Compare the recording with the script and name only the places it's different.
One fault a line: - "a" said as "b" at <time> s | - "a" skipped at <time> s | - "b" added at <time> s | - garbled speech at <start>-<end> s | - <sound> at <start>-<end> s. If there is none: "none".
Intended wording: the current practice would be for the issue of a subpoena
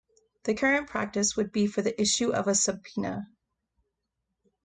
none